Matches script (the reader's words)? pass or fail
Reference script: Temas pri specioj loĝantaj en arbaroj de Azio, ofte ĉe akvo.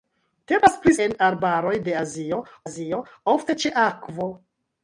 fail